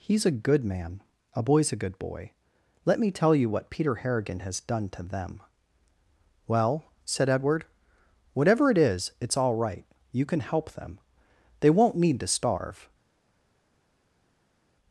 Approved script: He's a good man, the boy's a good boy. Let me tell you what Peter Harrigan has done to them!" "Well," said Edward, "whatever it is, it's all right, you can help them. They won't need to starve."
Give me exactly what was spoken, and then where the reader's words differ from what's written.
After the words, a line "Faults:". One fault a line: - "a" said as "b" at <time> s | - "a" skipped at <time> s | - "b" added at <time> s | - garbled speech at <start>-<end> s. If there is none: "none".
He's a good man, a boy's a good boy. Let me tell you what Peter Harrigan has done to them!" "Well," said Edward, "whatever it is, it's all right, you can help them. They won't need to starve."
Faults:
- "the" said as "a" at 1.4 s